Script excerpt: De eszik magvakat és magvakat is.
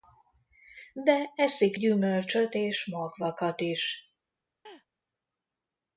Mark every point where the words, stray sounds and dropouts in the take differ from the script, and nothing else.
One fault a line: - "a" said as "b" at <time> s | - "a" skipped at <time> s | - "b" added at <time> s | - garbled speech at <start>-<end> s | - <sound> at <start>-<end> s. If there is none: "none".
- "magvakat" said as "gyümölcsöt" at 1.8 s
- laugh at 4.6-4.9 s